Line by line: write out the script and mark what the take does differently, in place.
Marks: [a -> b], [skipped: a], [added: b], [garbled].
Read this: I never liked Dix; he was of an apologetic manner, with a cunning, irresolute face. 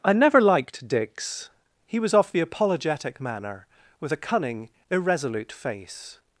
I never liked Dix; he was of [an -> the] apologetic manner, with a cunning, irresolute face.